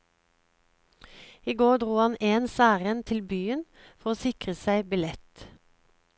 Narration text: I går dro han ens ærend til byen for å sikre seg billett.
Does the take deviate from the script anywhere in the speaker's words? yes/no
no